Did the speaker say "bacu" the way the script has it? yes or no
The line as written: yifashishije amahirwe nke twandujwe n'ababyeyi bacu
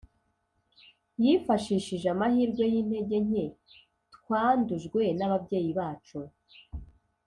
yes